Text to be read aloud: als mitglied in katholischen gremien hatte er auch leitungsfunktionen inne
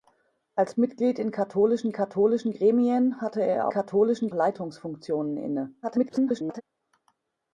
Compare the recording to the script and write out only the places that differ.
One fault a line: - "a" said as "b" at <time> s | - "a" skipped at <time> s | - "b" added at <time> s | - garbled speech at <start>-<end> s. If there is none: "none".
- "katholischen" added at 1.9 s
- "auch" said as "katholischen" at 3.7 s
- garbled speech at 5.8-6.6 s